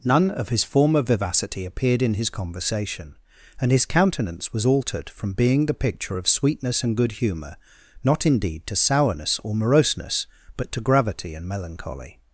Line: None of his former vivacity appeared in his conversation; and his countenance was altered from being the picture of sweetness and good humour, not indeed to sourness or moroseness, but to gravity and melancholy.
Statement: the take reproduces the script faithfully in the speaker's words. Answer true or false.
true